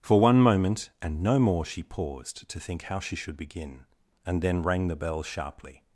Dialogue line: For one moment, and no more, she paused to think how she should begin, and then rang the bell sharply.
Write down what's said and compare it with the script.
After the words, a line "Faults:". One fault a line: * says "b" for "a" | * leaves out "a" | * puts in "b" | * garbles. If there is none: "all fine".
For one moment, and no more, she paused to think how she should begin, and then rang the bell sharply.
Faults:
all fine